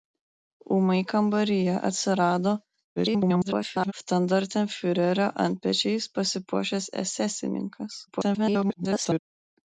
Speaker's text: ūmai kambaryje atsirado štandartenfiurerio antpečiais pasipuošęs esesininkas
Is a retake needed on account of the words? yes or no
yes